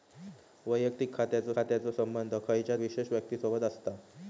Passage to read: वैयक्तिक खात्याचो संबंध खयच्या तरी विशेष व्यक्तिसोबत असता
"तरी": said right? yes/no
no